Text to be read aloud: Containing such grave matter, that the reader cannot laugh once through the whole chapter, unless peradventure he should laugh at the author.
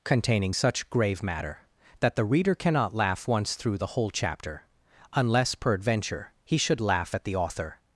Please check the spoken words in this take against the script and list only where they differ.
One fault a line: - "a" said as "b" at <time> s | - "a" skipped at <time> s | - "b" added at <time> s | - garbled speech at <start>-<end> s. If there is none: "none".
none